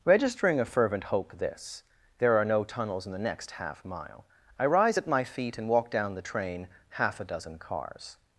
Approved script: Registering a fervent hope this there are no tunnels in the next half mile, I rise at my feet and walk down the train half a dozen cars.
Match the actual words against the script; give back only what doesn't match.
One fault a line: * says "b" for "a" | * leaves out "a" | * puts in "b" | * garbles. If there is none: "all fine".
all fine